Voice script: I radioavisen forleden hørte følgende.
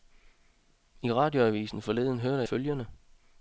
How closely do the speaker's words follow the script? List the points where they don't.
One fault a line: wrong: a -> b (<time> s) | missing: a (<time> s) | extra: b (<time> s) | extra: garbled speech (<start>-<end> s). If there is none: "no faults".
no faults